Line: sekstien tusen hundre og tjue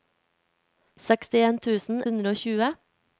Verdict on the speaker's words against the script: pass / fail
pass